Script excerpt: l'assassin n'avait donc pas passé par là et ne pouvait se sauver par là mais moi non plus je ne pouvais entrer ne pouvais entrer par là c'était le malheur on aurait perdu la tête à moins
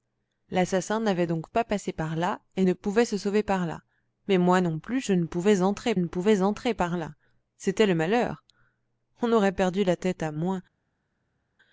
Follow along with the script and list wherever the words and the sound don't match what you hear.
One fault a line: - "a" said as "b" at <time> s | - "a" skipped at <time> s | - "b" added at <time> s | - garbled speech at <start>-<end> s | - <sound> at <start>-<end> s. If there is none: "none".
none